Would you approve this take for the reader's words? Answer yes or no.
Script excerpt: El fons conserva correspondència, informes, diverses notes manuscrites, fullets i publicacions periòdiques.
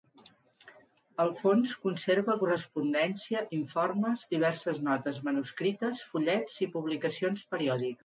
yes